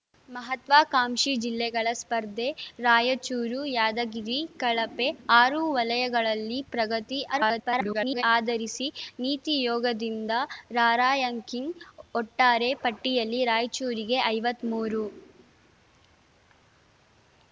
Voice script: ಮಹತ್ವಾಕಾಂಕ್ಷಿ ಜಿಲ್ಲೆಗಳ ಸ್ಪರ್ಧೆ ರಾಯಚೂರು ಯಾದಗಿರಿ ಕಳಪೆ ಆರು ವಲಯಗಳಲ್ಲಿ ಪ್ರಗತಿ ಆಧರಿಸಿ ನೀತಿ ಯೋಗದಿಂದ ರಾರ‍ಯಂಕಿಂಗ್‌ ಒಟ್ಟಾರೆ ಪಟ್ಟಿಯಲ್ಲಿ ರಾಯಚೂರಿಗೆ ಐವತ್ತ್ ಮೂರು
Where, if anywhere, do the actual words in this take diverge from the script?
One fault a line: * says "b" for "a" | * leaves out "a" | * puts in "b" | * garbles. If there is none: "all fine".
* garbles